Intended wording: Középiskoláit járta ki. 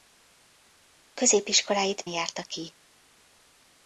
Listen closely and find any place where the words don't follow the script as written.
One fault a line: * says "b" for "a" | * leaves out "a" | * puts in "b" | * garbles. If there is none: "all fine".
all fine